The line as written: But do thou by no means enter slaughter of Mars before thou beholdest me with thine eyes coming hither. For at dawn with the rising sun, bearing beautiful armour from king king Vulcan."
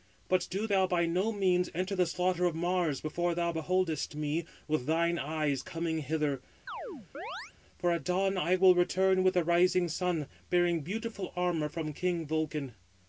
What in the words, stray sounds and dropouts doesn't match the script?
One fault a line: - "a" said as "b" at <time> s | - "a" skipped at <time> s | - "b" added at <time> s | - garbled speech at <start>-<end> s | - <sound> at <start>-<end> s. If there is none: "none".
- "the" added at 1.9 s
- chirp at 6.7-7.5 s
- "I will return" added at 8.4 s
- "king" skipped at 12.3 s